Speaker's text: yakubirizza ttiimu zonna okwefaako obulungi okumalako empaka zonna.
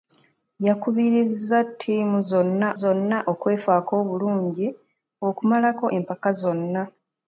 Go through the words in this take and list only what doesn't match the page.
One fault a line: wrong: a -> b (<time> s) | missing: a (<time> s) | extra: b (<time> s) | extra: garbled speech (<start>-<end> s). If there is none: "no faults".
extra: zonna (2.8 s)